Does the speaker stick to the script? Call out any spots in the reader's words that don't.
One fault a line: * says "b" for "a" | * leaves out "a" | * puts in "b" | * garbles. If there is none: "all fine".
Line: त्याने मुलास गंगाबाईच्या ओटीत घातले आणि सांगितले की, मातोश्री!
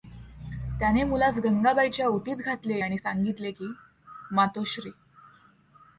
all fine